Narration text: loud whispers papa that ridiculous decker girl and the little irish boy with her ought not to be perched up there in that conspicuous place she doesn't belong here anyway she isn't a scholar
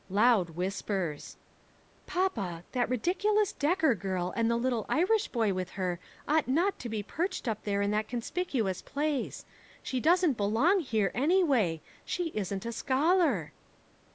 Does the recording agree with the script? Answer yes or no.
yes